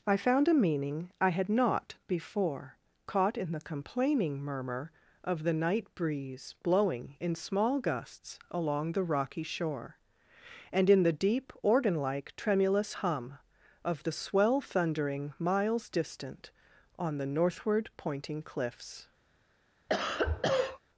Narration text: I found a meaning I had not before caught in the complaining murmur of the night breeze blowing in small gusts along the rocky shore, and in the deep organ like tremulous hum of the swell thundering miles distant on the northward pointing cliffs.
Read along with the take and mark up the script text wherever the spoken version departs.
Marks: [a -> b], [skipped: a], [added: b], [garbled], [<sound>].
I found a meaning I had not before caught in the complaining murmur of the night breeze blowing in small gusts along the rocky shore, and in the deep organ like tremulous hum of the swell thundering miles distant on the northward pointing cliffs. [cough]